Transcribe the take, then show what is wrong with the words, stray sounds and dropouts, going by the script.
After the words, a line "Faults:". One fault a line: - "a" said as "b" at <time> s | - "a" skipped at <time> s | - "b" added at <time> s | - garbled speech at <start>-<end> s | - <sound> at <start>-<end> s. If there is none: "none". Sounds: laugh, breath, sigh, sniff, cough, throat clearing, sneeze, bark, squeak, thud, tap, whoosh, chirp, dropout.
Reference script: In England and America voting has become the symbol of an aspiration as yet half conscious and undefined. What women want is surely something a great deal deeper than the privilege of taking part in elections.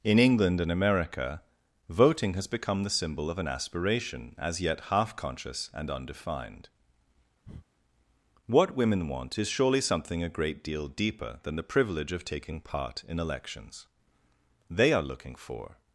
In England and America voting has become the symbol of an aspiration as yet half conscious and undefined. What women want is surely something a great deal deeper than the privilege of taking part in elections. They are looking for
Faults:
- breath at 7.4-7.7 s
- "They are looking for" added at 14.7 s